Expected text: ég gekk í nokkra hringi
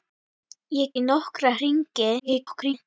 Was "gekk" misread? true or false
true